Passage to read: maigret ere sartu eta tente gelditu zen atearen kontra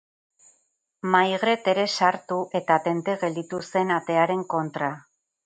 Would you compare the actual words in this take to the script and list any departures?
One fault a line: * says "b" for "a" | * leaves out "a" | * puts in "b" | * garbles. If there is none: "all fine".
all fine